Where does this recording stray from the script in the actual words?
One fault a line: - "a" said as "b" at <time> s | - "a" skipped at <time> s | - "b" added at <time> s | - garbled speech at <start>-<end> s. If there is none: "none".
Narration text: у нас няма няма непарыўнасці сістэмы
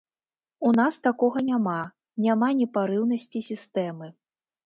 - "такога" added at 1.1 s